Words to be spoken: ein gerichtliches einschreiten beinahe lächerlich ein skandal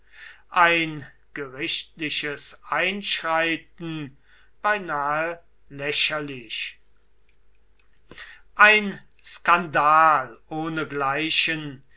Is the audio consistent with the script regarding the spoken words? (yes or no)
yes